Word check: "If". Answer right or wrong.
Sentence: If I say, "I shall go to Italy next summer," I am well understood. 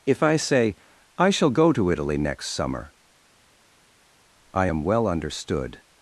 right